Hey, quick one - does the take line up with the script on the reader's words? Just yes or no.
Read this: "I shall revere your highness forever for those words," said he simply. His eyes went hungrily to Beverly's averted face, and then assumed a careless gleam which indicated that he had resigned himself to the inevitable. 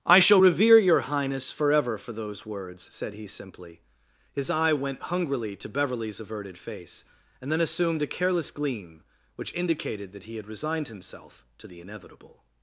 no